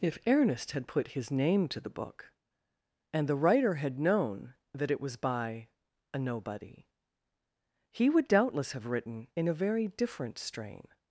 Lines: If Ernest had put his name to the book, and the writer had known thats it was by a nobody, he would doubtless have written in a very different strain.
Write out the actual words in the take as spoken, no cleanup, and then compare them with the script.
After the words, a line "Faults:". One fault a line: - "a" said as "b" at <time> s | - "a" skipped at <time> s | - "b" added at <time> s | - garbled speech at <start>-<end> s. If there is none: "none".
If Ernest had put his name to the book, and the writer had known that it was by a nobody, he would doubtless have written in a very different strain.
Faults:
- "thats" said as "that" at 4.7 s